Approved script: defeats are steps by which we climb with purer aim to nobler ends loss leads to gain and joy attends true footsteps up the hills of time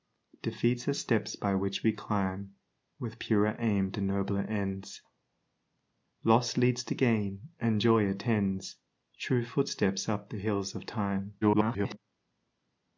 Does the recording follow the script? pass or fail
fail